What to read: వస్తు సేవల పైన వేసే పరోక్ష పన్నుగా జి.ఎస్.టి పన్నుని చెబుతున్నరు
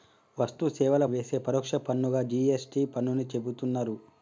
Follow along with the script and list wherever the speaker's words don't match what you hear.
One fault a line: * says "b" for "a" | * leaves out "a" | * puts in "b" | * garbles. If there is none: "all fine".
* leaves out "పైన"